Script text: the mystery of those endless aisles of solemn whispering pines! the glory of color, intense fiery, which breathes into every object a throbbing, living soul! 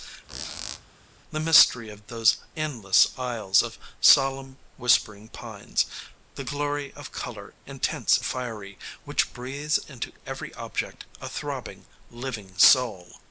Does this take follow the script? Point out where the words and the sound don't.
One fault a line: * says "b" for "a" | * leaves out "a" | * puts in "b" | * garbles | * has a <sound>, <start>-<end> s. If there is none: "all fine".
* has a squeak, 0.3-0.9 s